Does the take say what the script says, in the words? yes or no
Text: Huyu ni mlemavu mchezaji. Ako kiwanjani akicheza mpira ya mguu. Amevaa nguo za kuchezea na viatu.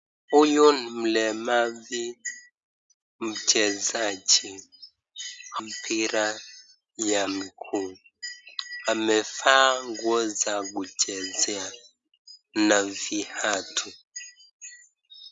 no